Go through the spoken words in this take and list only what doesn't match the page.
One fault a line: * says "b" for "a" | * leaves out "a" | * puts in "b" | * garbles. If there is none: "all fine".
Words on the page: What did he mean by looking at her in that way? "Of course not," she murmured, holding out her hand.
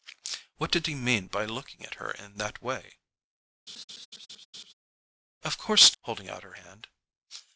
* leaves out "not she murmured"